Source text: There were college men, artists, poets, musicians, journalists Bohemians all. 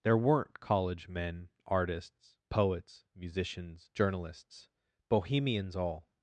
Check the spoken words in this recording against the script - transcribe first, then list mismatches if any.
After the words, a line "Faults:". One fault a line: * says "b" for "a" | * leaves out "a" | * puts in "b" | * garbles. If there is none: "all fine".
There weren't college men, artists, poets, musicians, journalists Bohemians all.
Faults:
* says "weren't" for "were"